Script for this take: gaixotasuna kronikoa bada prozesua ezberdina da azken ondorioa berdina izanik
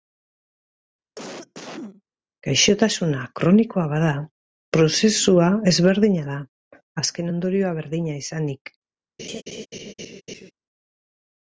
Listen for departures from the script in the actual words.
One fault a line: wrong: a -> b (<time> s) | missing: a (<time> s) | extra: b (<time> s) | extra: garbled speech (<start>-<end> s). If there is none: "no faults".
no faults